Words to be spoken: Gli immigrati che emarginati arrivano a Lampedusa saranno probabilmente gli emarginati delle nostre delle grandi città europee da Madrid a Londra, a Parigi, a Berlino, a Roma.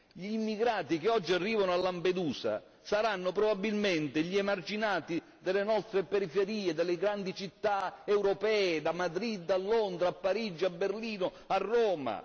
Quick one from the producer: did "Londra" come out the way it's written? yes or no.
yes